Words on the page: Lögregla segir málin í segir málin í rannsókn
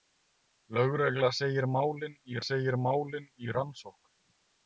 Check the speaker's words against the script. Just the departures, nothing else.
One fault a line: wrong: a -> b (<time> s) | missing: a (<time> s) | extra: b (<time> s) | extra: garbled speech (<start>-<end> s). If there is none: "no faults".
no faults